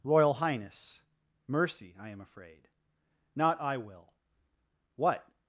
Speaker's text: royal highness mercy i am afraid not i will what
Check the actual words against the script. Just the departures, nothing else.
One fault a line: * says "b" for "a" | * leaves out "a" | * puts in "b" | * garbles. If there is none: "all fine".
all fine